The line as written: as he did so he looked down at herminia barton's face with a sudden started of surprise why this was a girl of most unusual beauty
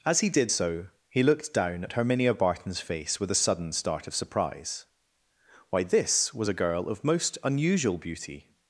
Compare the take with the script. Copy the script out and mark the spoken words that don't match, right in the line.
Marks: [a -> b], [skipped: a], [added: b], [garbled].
as he did so he looked down at herminia barton's face with a sudden [started -> start] of surprise why this was a girl of most unusual beauty